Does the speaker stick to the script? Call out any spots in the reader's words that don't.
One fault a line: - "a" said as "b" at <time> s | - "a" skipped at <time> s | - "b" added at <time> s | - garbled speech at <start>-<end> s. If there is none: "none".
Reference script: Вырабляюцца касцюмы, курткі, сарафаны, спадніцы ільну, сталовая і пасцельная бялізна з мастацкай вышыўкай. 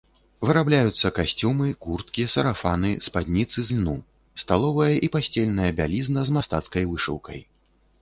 none